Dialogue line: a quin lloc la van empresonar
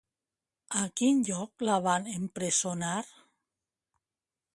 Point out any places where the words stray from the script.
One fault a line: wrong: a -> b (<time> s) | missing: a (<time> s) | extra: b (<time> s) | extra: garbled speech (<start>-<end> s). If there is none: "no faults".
no faults